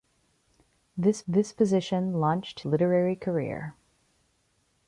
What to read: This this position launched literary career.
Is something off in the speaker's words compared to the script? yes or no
no